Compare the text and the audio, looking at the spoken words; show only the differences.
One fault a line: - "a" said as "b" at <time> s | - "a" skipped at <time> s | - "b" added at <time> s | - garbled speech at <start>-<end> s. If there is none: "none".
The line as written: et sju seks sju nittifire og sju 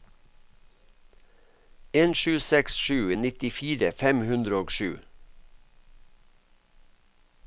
- "et" said as "en" at 2.0 s
- "fem hundre" added at 4.0 s